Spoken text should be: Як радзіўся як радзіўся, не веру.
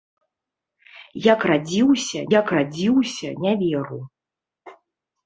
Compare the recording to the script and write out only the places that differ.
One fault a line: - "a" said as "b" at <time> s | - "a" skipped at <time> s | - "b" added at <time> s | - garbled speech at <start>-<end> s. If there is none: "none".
none